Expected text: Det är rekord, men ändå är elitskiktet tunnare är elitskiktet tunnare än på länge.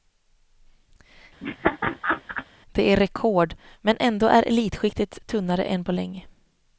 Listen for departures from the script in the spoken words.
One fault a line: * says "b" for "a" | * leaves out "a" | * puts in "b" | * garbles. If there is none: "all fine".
* leaves out "är elitskiktet tunnare"